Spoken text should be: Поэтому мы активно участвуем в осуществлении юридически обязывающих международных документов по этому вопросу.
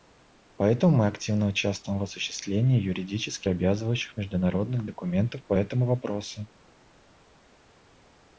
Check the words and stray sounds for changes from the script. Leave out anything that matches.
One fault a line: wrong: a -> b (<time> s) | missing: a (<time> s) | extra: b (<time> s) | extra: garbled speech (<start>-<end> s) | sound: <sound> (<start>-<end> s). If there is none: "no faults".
no faults